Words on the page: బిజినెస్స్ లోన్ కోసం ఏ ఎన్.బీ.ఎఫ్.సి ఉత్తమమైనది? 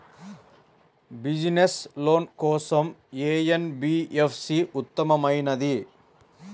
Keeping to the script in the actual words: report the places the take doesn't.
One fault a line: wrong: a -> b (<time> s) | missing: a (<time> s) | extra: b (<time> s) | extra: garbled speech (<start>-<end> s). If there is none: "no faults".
no faults